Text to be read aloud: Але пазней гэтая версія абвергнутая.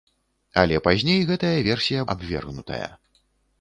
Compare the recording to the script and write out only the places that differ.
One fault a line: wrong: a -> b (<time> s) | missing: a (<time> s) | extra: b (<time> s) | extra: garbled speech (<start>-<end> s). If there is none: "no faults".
no faults